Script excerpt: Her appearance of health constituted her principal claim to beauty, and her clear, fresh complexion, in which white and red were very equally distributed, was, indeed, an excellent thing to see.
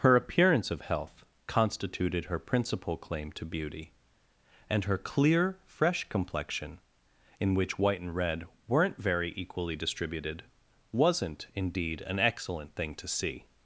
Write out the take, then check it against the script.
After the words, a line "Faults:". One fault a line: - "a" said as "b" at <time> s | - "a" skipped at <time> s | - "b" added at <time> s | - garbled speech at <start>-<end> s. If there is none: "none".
Her appearance of health constituted her principal claim to beauty, and her clear, fresh complexion, in which white and red weren't very equally distributed, wasn't, indeed, an excellent thing to see.
Faults:
- "were" said as "weren't" at 8.7 s
- "was" said as "wasn't" at 10.9 s